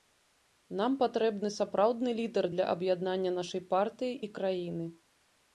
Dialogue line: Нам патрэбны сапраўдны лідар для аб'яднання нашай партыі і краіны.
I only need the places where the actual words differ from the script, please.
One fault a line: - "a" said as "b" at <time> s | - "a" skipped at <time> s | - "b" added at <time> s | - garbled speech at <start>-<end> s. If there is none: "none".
none